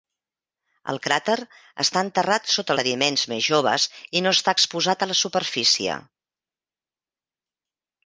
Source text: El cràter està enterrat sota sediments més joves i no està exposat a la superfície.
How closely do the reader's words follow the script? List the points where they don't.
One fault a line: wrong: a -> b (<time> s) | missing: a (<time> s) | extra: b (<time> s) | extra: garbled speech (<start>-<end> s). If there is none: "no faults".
no faults